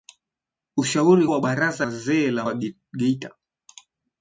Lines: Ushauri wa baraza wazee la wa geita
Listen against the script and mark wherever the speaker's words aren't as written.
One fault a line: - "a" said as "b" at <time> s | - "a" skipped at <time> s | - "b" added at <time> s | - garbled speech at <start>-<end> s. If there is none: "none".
none